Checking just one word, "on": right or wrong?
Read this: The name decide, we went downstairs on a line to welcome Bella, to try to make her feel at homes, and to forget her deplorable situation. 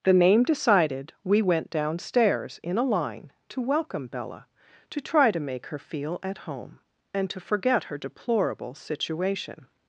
wrong